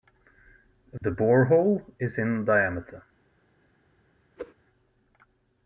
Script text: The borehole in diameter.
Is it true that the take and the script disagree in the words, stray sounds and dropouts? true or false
true